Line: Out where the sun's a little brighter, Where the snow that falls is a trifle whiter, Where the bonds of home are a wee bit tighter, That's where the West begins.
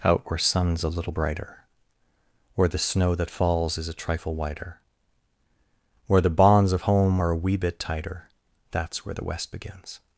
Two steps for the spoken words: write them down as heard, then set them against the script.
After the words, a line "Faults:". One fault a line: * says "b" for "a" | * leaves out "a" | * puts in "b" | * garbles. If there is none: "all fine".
Out where sun's a little brighter, Where the snow that falls is a trifle whiter, Where the bonds of home are a wee bit tighter, That's where the West begins.
Faults:
* leaves out "the"